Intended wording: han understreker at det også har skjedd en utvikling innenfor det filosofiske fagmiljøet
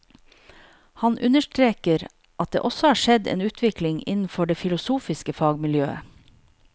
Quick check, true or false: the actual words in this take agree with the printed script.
true